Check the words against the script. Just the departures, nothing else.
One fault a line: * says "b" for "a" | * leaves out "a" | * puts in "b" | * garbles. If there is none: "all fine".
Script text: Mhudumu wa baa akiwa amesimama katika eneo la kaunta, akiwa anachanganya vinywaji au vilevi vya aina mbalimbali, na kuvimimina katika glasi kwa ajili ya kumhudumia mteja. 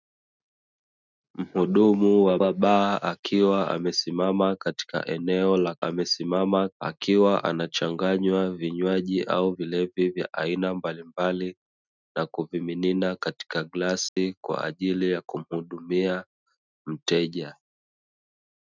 * puts in "wa"
* says "amesimama" for "kaunta"